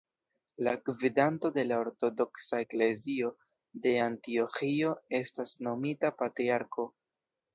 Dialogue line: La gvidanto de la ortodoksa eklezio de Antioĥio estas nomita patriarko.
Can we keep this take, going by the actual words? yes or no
yes